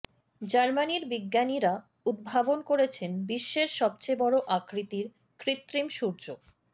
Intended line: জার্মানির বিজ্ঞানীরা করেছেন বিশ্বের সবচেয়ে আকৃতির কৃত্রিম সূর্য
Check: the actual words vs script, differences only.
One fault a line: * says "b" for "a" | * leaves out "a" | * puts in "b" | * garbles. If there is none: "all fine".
* puts in "উদ্ভাবন"
* puts in "বড়"